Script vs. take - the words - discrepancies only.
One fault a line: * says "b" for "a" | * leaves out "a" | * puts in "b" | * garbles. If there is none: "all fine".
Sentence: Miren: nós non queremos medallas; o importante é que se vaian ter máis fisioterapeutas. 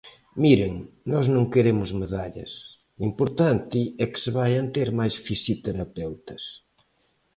all fine